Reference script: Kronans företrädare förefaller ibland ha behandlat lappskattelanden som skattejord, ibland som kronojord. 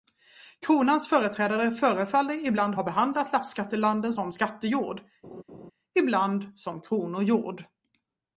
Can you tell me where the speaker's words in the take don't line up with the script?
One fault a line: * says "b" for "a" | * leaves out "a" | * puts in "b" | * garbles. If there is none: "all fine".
all fine